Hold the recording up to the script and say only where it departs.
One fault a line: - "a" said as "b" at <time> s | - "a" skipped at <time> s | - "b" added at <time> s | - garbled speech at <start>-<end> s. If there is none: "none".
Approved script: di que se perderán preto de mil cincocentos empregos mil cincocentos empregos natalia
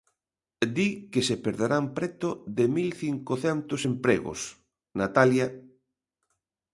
- "mil cincocentos empregos" skipped at 4.4 s